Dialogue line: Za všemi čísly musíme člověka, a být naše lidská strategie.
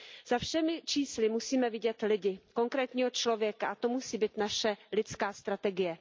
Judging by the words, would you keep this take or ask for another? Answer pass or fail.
fail